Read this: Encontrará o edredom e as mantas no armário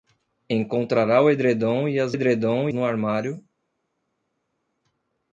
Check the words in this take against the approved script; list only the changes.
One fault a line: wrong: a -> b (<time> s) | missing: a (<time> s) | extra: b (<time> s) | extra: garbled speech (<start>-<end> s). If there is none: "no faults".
wrong: mantas -> edredom (2.1 s)